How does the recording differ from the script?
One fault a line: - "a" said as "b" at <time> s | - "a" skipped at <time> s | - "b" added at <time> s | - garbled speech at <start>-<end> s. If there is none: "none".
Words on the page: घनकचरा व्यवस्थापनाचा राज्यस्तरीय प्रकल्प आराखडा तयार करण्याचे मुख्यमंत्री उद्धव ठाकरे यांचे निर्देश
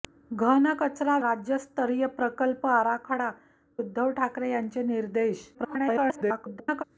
- "व्यवस्थापनाचा" skipped at 1.2 s
- "तयार करण्याचे मुख्यमंत्री" skipped at 3.3 s
- garbled speech at 5.5-6.8 s